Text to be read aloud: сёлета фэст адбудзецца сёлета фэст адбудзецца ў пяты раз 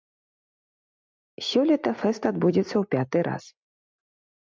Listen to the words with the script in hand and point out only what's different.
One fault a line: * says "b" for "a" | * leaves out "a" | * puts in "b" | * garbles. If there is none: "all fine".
* leaves out "сёлета фэст адбудзецца"